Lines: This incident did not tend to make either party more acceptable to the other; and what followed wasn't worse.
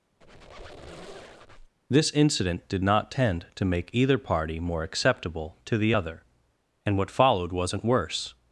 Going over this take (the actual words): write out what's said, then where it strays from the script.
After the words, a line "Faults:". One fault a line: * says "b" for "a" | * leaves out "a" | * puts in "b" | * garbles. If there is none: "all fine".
This incident did not tend to make either party more acceptable to the other; and what followed wasn't worse.
Faults:
all fine